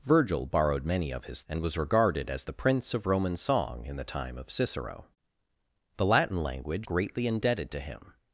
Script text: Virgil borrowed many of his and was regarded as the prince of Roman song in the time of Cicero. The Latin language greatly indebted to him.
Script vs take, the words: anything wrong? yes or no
no